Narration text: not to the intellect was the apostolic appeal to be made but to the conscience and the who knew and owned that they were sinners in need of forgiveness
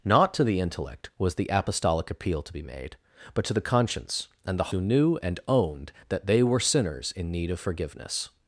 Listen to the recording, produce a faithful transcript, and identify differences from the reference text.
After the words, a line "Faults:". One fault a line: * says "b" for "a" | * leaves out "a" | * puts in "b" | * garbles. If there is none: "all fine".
not to the intellect was the apostolic appeal to be made but to the conscience and the who knew and owned that they were sinners in need of forgiveness
Faults:
all fine